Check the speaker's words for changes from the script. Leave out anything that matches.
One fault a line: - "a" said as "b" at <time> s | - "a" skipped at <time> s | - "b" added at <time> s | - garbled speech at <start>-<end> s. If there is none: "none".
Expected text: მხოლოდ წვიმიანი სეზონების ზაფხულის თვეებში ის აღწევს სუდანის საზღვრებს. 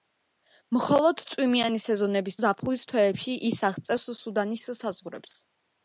none